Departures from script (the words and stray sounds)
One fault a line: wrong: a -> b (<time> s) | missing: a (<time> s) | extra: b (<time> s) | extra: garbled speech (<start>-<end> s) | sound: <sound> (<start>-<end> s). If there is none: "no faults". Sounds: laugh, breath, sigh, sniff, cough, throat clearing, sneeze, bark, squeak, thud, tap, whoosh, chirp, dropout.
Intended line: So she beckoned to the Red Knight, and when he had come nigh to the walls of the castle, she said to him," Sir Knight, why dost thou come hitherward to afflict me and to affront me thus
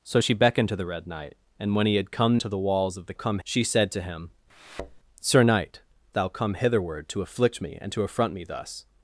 missing: nigh (2.4 s)
wrong: castle -> come (3.1 s)
sound: thud (4.5-5.0 s)
missing: why dost (5.8 s)